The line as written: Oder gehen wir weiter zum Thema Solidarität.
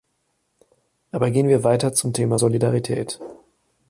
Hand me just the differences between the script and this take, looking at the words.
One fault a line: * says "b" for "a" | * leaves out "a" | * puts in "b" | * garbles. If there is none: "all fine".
* says "Aber" for "Oder"